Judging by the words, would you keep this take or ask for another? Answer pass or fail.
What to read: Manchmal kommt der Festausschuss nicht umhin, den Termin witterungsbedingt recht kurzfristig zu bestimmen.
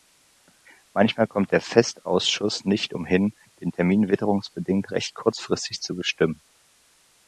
pass